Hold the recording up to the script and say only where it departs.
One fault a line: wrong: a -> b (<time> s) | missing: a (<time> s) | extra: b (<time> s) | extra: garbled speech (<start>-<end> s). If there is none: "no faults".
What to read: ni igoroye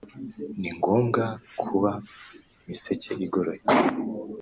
extra: ngombwa kuba miseke (0.8 s)